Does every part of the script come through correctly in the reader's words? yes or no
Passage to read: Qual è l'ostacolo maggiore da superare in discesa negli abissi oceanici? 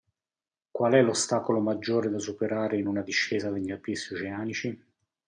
no